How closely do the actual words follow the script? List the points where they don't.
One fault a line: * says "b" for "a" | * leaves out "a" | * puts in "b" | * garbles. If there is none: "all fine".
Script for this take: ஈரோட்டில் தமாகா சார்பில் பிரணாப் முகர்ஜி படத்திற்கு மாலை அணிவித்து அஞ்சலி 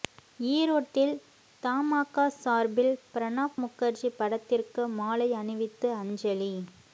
all fine